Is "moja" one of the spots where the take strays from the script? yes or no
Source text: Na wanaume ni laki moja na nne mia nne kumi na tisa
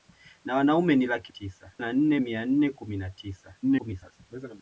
yes